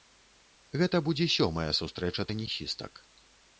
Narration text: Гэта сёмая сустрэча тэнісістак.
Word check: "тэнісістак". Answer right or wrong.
right